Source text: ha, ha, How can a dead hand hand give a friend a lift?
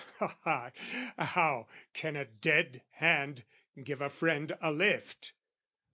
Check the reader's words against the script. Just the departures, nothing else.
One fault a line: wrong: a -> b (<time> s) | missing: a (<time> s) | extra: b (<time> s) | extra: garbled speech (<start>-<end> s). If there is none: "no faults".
missing: hand (3.4 s)